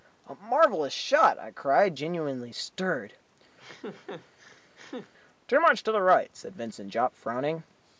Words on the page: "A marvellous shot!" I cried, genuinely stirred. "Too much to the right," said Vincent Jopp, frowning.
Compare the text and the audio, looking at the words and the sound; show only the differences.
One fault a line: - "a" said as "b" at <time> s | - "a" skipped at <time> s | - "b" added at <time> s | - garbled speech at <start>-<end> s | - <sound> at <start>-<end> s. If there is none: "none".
- laugh at 3.6-5.1 s